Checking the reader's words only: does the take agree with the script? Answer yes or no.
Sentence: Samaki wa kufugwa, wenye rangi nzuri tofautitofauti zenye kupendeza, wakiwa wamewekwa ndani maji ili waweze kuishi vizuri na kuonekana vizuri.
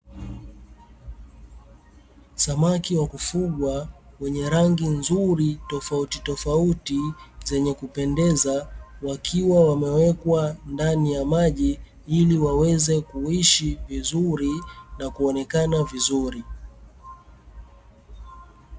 no